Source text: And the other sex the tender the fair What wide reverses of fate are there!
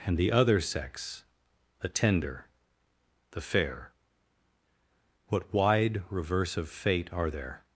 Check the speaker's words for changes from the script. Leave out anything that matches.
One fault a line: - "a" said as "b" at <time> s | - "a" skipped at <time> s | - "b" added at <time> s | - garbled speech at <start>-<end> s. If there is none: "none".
- "reverses" said as "reverse" at 6.1 s